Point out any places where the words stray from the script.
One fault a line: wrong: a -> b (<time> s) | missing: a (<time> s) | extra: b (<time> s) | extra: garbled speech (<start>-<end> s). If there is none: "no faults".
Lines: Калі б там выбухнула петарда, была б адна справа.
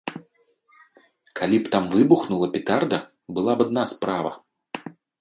no faults